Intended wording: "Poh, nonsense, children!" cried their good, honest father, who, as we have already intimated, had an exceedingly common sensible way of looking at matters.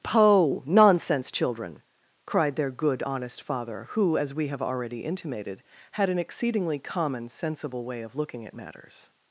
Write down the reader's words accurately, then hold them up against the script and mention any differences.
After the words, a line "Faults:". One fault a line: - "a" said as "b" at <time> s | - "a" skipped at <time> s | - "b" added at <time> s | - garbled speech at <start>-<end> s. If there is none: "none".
"Poh, nonsense, children!" cried their good, honest father, who, as we have already intimated, had an exceedingly common sensible way of looking at matters.
Faults:
none